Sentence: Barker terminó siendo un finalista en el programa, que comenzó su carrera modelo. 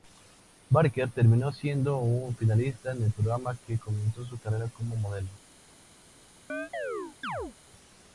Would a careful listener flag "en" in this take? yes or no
no